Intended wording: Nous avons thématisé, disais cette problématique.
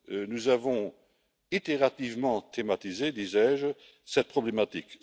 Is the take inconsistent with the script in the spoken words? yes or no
yes